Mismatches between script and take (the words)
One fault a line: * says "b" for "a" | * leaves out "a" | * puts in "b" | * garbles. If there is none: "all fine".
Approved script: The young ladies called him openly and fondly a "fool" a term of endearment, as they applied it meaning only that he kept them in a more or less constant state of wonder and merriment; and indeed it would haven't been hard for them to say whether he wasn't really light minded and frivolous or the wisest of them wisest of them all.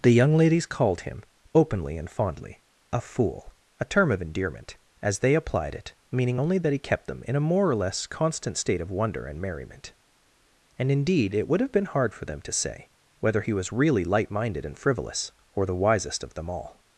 * says "have" for "haven't"
* says "was" for "wasn't"
* leaves out "wisest of them"